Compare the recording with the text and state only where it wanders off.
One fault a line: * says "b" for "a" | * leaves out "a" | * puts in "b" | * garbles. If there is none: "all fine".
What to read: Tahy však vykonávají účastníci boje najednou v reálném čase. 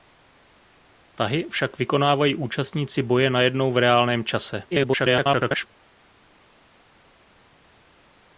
* garbles